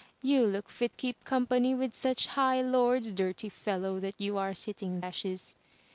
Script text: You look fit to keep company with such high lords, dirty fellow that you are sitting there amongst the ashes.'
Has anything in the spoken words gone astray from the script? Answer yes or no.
yes